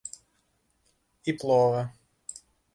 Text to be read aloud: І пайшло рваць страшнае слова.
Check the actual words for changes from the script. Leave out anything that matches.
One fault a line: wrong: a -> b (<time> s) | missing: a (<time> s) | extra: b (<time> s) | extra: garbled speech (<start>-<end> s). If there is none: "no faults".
missing: пайшло рваць страшнае (1.4 s)